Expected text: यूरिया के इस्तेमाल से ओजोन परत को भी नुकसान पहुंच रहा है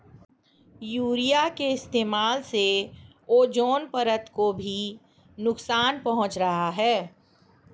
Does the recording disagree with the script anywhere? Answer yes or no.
no